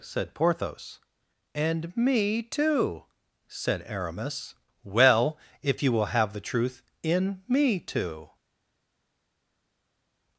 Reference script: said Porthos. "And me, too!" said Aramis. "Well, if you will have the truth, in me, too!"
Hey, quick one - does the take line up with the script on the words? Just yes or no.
yes